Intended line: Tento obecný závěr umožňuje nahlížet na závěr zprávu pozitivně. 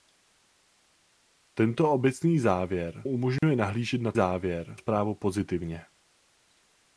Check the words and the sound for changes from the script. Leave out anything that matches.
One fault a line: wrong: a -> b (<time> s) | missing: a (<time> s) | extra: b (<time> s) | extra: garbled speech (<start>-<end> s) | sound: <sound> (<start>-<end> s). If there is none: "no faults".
sound: dropout (3.4-3.4 s)